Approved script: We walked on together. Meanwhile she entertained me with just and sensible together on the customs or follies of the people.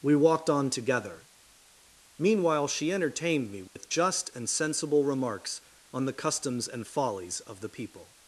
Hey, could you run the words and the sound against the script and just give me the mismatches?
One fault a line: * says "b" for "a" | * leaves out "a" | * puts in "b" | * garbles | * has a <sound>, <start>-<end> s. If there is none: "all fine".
* has a dropout, 3.7-3.8 s
* says "remarks" for "together"
* says "and" for "or"